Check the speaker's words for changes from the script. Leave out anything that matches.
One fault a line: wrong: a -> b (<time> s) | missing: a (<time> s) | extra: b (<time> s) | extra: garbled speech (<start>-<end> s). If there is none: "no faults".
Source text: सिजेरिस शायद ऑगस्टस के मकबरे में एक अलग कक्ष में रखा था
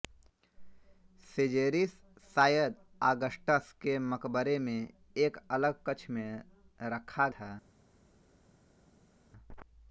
no faults